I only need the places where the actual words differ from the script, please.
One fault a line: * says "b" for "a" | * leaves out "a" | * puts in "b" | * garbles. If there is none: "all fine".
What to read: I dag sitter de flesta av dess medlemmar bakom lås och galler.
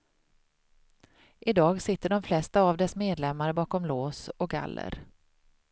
all fine